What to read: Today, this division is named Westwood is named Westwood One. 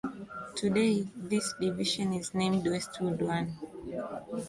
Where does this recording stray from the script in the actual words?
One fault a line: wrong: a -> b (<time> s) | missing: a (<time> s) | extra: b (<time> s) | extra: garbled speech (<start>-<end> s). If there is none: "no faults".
missing: is named Westwood (3.2 s)